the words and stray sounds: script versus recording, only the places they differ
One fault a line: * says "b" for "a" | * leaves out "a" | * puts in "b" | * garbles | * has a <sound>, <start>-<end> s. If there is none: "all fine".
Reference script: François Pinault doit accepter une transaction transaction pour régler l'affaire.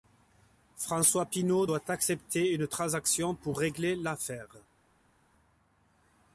* leaves out "transaction"